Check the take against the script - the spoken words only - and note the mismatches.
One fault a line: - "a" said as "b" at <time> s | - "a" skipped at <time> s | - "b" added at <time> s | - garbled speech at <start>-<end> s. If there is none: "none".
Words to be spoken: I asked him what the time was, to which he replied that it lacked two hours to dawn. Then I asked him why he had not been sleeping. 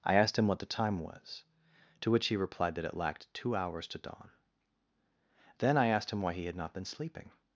none